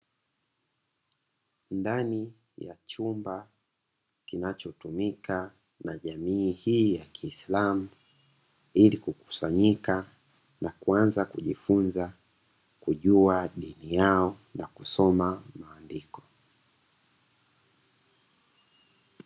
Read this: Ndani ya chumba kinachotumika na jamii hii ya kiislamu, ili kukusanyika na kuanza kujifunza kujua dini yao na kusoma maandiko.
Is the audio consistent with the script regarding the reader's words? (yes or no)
yes